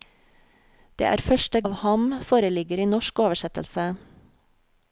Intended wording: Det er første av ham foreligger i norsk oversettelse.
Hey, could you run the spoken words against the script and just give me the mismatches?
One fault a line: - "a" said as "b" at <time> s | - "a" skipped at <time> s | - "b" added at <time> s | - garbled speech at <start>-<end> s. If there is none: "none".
none